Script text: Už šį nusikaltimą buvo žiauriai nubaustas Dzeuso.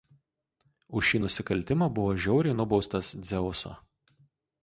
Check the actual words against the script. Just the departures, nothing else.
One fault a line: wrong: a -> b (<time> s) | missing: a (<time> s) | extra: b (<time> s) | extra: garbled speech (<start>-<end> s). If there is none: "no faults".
no faults